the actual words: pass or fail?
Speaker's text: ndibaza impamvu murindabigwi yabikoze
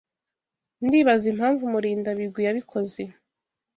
pass